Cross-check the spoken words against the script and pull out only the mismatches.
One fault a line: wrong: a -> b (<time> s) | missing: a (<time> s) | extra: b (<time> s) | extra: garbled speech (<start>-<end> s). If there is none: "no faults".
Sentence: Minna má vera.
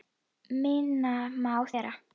no faults